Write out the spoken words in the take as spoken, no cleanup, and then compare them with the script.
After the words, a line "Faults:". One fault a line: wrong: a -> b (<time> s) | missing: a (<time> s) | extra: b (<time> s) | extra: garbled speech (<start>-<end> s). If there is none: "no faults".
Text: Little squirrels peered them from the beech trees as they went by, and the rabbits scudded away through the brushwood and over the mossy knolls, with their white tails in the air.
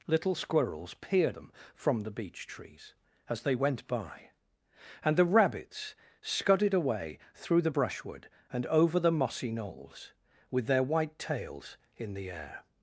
Little squirrels peered them from the beech trees as they went by, and the rabbits scudded away through the brushwood and over the mossy knolls, with their white tails in the air.
Faults:
no faults